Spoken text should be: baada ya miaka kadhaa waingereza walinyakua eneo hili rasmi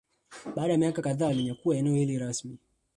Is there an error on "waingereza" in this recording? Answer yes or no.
yes